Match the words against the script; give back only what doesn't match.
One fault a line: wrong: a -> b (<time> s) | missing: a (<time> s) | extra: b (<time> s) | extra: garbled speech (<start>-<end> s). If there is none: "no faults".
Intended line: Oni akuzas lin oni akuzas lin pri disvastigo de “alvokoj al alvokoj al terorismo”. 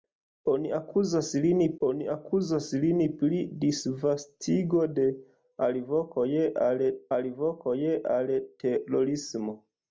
no faults